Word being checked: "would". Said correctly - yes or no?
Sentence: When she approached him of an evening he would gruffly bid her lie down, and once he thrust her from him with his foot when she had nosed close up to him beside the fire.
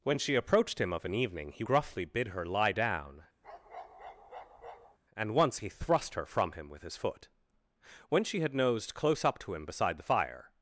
no